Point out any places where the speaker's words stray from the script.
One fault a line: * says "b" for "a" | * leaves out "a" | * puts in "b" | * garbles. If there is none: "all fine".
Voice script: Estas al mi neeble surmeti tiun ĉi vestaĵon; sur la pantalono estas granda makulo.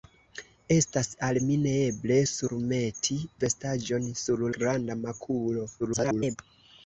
* leaves out "tiun ĉi"
* leaves out "la pantalono estas"
* garbles